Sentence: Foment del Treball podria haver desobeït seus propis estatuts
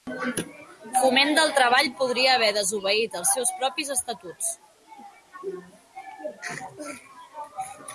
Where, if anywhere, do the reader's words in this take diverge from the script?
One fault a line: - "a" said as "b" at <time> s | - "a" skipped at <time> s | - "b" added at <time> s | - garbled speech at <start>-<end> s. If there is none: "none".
- "els" added at 3.2 s